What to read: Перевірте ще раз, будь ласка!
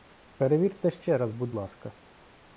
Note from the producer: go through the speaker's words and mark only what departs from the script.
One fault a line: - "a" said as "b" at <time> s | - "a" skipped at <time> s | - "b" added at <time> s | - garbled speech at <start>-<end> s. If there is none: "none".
none